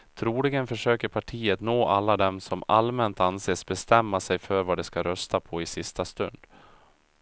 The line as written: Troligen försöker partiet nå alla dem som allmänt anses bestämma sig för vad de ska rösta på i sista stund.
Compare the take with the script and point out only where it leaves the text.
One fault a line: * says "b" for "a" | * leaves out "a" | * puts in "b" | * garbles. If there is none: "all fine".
all fine